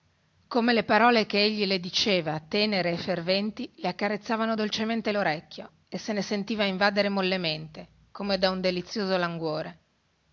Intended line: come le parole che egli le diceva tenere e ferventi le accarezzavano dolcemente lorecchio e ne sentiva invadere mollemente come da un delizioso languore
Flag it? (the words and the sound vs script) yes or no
yes